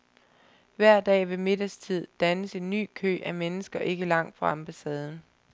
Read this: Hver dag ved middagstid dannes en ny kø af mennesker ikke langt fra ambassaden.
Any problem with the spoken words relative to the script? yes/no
no